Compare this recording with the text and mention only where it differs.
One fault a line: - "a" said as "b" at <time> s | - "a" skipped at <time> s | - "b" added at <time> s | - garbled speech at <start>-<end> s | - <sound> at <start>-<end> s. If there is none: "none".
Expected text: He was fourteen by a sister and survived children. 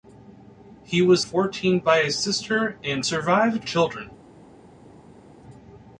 none